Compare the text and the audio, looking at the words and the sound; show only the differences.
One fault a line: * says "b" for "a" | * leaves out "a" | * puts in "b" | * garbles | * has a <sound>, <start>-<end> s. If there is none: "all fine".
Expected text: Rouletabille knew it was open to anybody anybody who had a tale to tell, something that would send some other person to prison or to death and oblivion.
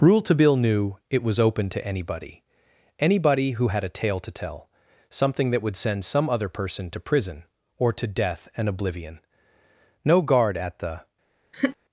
* puts in "No guard at the"
* has a laugh, 11.5-11.8 s